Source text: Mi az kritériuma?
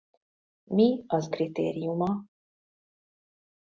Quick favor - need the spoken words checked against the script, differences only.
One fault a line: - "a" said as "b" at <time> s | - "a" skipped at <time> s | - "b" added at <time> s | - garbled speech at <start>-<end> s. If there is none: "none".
none